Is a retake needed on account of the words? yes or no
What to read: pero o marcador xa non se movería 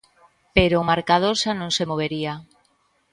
no